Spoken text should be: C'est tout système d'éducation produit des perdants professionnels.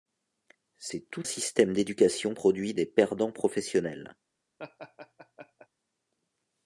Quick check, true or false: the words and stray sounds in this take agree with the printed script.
false